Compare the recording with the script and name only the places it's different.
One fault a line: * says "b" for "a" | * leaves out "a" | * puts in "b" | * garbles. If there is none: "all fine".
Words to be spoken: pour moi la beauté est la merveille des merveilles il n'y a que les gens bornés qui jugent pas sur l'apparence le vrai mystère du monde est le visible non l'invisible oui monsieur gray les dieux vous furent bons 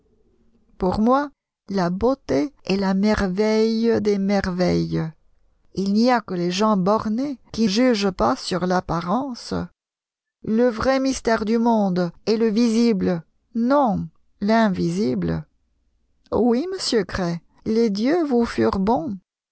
all fine